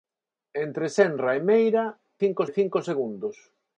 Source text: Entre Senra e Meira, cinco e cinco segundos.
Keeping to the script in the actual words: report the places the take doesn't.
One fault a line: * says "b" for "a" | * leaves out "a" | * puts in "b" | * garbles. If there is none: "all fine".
all fine